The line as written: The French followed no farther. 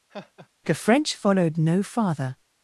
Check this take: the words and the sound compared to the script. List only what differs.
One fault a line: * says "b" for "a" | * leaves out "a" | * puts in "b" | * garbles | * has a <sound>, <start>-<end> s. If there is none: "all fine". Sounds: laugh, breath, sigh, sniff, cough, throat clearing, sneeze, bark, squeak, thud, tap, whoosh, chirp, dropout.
* has a laugh, 0.1-0.5 s